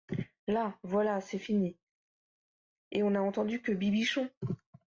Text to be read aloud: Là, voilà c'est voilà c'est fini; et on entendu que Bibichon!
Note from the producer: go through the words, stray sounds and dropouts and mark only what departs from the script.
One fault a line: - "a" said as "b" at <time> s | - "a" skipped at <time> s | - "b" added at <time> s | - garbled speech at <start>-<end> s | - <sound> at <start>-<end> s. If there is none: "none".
- "voilà c'est" skipped at 1.4 s
- "n'a" added at 3.1 s